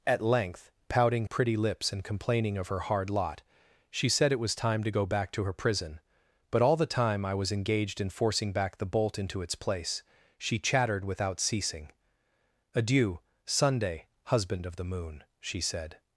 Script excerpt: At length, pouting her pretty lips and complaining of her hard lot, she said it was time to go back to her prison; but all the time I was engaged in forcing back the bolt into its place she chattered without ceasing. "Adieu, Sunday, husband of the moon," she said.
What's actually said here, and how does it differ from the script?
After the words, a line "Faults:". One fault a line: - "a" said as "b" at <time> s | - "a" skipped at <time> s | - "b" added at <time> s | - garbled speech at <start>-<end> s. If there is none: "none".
At length, pouting pretty lips and complaining of her hard lot, she said it was time to go back to her prison; but all the time I was engaged in forcing back the bolt into its place she chattered without ceasing. "Adieu, Sunday, husband of the moon," she said.
Faults:
- "her" skipped at 1.3 s